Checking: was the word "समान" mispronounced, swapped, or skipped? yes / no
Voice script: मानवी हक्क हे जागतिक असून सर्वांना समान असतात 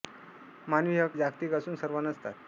yes